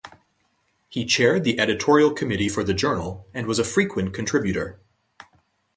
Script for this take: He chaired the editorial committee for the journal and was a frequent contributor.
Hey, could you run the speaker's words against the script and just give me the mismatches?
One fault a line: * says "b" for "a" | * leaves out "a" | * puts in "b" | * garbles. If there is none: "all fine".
all fine